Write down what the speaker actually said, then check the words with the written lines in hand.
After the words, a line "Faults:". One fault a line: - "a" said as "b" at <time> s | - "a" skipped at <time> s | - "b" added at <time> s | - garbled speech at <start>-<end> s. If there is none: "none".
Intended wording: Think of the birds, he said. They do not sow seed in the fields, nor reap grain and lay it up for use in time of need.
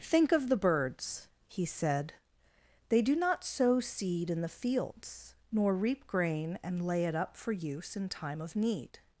Think of the birds, he said. They do not sow seed in the fields, nor reap grain and lay it up for use in time of need.
Faults:
none